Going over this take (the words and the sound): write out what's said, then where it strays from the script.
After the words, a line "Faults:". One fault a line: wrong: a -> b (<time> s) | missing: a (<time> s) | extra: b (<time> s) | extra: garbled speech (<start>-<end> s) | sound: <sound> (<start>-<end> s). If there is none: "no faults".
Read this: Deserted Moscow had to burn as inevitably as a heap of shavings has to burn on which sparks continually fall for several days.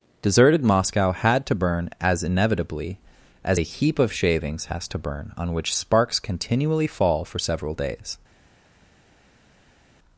Deserted Moscow had to burn as inevitably as a heap of shavings has to burn on which sparks continually fall for several days.
Faults:
no faults